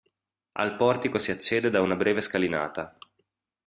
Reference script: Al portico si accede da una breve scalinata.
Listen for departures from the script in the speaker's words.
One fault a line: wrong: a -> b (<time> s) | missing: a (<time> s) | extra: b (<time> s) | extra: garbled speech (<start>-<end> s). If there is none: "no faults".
no faults